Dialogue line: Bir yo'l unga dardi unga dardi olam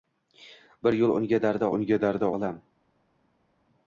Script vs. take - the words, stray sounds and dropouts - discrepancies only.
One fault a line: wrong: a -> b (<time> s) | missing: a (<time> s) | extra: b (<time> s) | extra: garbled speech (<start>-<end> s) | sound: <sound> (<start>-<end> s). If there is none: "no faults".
no faults